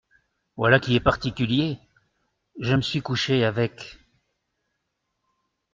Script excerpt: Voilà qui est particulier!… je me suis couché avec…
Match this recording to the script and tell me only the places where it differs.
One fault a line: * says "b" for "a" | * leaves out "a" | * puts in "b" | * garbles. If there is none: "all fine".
all fine